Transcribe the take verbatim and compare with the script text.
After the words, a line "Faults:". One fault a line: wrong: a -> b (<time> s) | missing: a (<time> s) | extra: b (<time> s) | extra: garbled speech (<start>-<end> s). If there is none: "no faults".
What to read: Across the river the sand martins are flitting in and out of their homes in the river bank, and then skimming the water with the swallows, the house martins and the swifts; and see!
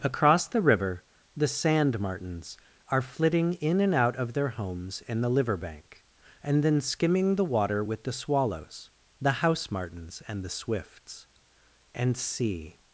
Across the river the sand martins are flitting in and out of their homes in the liver bank, and then skimming the water with the swallows, the house martins and the swifts; and see!
Faults:
wrong: river -> liver (5.3 s)